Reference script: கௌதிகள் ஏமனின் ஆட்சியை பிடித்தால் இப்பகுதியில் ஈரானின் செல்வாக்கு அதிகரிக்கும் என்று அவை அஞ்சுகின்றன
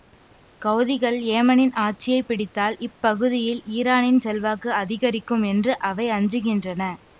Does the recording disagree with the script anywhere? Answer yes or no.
no